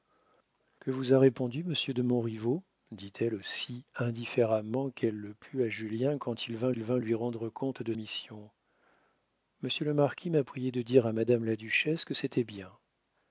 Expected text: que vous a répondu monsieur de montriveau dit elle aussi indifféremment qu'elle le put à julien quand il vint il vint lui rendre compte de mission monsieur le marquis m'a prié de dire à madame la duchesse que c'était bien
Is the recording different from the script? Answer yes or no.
no